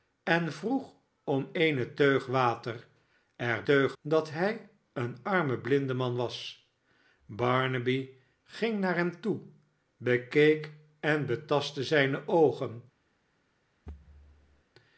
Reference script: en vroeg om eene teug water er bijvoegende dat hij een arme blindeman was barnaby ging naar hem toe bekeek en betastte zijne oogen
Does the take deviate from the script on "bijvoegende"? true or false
true